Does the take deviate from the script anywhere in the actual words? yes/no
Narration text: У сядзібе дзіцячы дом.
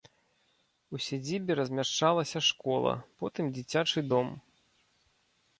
yes